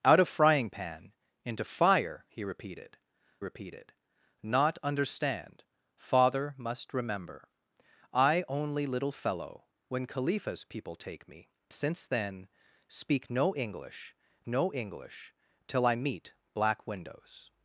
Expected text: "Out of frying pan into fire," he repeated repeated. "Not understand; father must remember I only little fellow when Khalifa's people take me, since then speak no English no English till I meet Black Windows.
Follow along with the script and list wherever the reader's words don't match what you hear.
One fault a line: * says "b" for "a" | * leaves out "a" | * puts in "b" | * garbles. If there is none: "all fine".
all fine